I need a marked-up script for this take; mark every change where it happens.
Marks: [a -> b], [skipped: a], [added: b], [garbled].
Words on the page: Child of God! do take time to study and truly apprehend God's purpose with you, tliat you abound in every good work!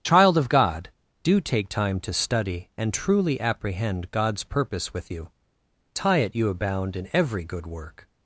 Child of God! do take time to study and truly apprehend God's purpose with you, [tliat -> tie it] you abound in every good work!